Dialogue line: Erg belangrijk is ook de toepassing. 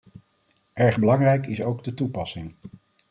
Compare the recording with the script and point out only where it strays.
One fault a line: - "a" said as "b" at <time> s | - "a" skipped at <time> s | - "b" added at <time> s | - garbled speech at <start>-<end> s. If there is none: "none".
none